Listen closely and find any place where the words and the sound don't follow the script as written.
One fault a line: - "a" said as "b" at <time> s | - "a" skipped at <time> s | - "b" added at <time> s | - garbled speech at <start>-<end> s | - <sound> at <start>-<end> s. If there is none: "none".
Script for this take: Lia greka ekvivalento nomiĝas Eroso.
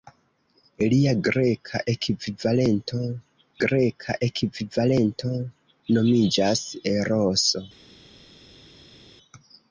- "greka ekvivalento" added at 3.6 s